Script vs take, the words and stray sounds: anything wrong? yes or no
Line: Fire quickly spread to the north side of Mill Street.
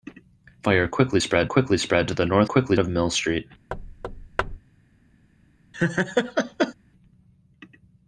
yes